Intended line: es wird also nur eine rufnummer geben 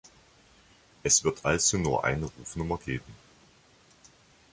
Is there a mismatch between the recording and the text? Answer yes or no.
no